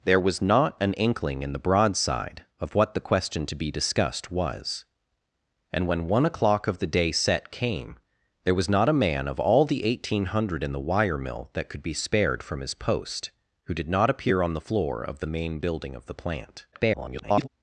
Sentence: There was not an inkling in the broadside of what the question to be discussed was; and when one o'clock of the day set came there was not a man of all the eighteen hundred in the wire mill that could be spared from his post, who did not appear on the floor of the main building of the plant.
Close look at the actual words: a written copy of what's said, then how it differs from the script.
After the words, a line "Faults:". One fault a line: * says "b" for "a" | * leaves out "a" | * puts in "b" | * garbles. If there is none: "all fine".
There was not an inkling in the broadside of what the question to be discussed was; and when one o'clock of the day set came there was not a man of all the eighteen hundred in the wire mill that could be spared from his post, who did not appear on the floor of the main building of the plant. [garbled]
Faults:
* garbles